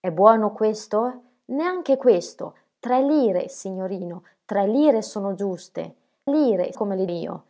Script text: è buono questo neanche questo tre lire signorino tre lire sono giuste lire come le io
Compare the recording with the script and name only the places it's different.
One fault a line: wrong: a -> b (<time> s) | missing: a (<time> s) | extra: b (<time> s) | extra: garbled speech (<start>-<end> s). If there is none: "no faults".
no faults